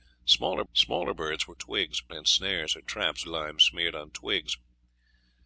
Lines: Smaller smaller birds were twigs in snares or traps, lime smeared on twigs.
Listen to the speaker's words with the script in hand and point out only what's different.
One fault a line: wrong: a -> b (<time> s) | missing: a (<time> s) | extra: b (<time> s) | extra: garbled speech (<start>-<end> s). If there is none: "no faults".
no faults